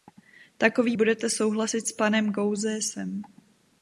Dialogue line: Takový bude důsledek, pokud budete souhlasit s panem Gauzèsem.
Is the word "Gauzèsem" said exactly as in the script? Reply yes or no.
yes